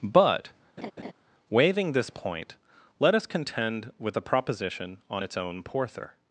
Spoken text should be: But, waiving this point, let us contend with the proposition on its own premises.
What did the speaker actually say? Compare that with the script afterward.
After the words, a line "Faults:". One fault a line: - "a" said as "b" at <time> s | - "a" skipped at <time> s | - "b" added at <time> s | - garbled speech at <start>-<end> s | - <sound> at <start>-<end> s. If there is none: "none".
But, waiving this point, let us contend with the proposition on its own porther.
Faults:
- laugh at 0.8-1.1 s
- "premises" said as "porther" at 5.6 s